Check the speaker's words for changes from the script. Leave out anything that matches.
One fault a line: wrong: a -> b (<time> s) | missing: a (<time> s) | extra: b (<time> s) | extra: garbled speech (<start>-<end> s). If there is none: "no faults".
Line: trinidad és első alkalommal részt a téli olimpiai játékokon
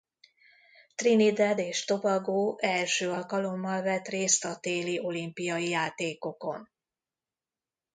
extra: tobago (1.8 s)
extra: vett (3.8 s)